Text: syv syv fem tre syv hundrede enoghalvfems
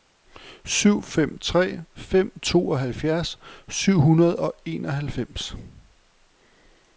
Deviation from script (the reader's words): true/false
true